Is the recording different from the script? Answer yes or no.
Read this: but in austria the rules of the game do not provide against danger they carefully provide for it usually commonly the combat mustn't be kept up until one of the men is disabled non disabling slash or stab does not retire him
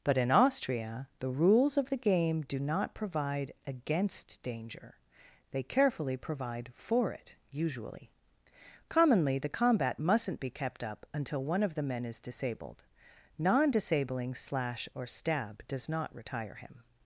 no